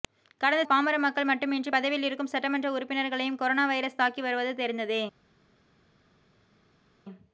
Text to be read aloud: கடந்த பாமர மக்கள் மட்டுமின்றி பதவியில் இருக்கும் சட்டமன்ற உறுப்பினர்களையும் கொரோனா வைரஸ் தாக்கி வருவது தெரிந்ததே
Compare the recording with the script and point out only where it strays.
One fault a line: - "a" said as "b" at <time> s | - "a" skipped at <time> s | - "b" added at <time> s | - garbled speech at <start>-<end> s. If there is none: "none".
none